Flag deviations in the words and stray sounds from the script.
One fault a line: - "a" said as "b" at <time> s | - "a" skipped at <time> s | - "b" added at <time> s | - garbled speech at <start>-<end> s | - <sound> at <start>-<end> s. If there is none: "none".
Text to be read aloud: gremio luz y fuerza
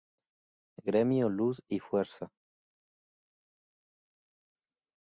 none